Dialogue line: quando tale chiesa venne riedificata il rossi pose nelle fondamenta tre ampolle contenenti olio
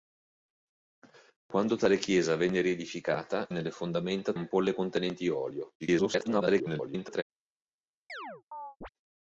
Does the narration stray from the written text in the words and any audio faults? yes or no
yes